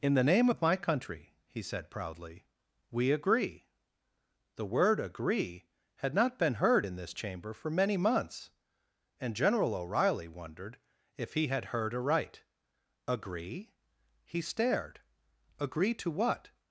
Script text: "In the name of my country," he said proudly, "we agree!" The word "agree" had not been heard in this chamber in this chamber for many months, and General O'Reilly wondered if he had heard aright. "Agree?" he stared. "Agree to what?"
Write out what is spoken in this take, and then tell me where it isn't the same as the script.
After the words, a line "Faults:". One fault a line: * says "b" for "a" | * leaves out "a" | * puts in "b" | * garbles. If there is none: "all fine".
"In the name of my country," he said proudly, "we agree!" The word "agree" had not been heard in this chamber for many months, and General O'Reilly wondered if he had heard aright. "Agree?" he stared. "Agree to what?"
Faults:
* leaves out "in this chamber"